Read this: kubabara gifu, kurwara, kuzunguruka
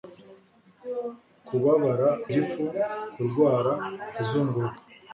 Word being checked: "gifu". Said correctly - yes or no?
yes